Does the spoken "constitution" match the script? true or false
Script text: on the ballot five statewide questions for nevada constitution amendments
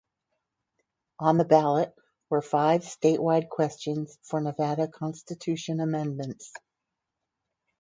true